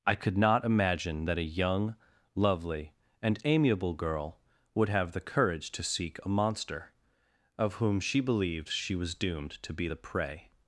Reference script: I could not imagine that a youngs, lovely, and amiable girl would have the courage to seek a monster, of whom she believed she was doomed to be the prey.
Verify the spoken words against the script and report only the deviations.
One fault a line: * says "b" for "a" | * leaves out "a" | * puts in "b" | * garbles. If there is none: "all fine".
* says "young" for "youngs"